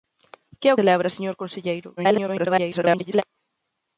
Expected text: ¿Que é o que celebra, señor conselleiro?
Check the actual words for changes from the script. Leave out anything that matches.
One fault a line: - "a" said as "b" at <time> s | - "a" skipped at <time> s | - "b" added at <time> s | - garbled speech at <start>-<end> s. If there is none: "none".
- "que" skipped at 0.8 s
- garbled speech at 2.0-3.2 s